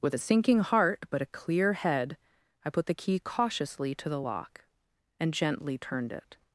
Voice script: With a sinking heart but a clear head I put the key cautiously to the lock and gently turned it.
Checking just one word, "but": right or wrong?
right